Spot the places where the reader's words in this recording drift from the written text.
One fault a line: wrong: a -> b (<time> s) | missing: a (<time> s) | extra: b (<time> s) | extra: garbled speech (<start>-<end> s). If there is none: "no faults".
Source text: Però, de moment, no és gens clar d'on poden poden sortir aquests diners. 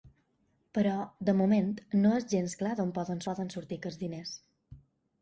no faults